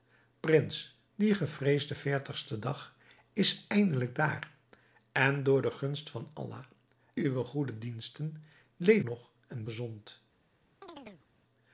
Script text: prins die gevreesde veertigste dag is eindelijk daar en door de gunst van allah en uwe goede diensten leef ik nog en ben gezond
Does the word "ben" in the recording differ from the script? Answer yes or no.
yes